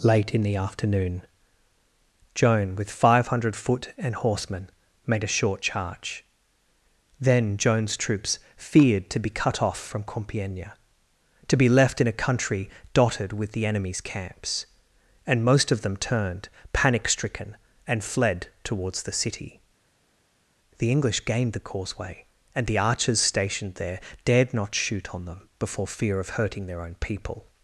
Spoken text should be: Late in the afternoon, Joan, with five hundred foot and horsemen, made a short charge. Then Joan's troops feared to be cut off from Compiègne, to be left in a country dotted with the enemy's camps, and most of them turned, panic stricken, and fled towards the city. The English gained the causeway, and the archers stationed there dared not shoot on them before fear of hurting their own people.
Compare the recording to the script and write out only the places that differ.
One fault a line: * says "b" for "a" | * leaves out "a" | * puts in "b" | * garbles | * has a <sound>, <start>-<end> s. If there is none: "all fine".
all fine